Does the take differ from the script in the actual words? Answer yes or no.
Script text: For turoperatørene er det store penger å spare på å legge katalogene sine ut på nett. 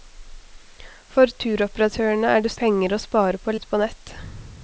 yes